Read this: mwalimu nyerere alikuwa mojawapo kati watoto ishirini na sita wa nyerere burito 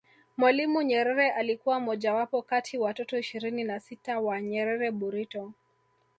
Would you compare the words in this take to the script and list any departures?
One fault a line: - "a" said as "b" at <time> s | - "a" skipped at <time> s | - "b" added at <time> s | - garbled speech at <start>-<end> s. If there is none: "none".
none